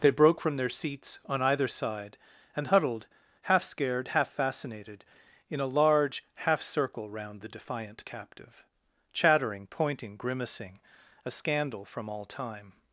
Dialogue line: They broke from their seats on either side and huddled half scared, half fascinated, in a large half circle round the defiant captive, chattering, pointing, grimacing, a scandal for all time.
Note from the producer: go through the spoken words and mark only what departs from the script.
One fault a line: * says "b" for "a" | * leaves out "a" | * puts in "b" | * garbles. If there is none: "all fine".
* says "from" for "for"